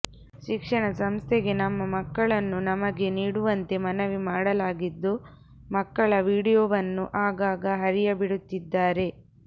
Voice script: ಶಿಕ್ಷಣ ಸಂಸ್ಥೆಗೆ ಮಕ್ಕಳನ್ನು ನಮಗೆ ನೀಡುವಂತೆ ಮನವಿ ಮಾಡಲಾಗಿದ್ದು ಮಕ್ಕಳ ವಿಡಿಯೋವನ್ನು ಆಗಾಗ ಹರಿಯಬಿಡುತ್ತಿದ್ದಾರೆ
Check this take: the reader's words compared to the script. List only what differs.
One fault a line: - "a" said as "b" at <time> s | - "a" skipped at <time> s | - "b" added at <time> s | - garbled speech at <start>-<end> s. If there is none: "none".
- "ನಮ್ಮ" added at 1.6 s